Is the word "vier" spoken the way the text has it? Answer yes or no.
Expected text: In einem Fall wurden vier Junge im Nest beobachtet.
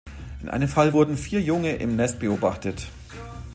yes